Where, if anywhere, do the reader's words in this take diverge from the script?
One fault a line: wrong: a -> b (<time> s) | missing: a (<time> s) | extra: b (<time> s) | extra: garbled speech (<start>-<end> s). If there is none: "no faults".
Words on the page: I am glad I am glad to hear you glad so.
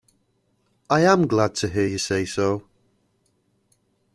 missing: I am glad (1.5 s)
wrong: glad -> say (2.0 s)